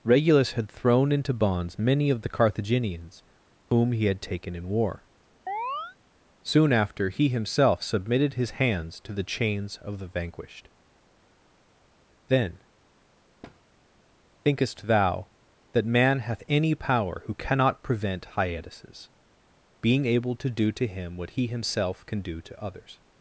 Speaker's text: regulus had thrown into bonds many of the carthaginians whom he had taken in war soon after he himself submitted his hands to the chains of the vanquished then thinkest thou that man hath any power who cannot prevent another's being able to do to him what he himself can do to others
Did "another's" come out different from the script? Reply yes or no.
yes